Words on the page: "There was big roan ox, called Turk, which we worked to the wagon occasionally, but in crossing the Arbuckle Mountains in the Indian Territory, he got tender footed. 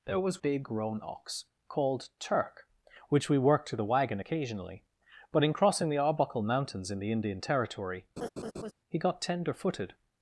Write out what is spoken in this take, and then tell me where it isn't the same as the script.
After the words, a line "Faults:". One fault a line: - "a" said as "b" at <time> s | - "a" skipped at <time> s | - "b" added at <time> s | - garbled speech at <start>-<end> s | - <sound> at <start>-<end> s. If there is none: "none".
"There was big roan ox, called Turk, which we worked to the wagon occasionally, but in crossing the Arbuckle Mountains in the Indian Territory, he got tender footed.
Faults:
- laugh at 8.2-8.7 s